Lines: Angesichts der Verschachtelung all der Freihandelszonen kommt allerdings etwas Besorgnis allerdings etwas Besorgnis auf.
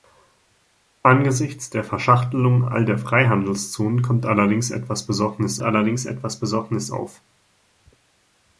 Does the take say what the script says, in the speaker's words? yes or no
yes